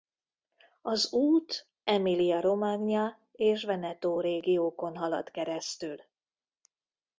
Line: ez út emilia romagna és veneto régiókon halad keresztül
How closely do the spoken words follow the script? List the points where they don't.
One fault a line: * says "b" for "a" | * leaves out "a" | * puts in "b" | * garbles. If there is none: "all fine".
* says "az" for "ez"